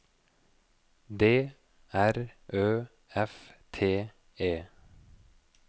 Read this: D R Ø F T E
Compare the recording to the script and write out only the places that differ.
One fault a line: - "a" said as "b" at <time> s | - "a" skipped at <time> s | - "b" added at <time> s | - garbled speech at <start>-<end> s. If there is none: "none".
none